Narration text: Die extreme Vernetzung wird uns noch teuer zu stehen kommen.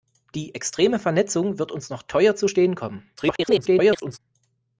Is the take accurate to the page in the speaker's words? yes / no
no